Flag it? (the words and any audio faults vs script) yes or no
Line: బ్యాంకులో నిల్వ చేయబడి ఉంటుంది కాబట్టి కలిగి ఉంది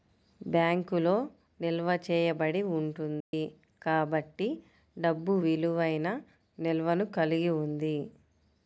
yes